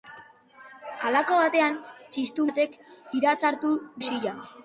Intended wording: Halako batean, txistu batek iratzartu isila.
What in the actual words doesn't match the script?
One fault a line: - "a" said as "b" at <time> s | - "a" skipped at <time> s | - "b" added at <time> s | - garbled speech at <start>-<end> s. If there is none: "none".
none